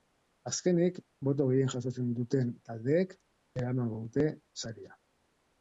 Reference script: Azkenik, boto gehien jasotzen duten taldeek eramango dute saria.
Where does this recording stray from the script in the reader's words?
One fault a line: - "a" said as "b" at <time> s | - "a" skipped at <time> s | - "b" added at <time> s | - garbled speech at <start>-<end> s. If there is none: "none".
none